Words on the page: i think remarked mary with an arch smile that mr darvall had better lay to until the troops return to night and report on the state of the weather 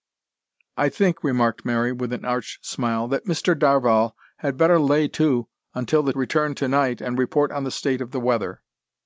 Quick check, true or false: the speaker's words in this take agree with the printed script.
false